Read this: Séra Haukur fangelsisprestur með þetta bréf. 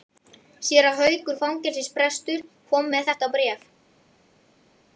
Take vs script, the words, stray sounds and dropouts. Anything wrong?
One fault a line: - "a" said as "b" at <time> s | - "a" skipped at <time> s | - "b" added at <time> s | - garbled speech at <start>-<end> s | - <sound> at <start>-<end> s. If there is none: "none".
- "kom" added at 2.7 s